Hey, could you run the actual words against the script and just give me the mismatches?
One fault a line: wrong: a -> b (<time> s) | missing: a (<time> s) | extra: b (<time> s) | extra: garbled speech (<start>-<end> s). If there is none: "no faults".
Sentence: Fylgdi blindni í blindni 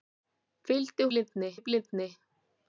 no faults